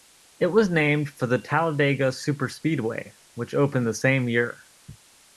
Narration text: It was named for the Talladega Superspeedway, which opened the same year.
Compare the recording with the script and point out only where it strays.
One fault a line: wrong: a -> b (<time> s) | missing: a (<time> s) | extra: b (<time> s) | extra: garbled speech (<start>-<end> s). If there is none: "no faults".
no faults